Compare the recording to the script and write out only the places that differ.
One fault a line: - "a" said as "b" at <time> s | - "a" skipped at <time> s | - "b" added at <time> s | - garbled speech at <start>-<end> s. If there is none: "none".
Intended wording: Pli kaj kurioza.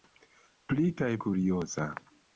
none